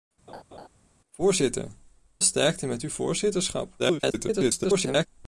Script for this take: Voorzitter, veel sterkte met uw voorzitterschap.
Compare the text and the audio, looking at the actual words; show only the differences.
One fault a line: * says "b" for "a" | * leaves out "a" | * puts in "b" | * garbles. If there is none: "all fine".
* leaves out "veel"
* garbles